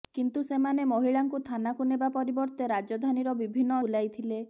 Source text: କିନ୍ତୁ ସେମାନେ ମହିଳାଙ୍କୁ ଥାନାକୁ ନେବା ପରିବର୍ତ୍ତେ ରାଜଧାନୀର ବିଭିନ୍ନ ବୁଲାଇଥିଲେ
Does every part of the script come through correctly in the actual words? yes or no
yes